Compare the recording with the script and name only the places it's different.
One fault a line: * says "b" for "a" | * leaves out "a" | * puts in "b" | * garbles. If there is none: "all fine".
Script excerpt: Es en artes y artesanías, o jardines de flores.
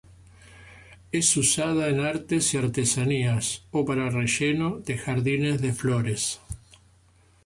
* puts in "usada"
* puts in "para relleno de"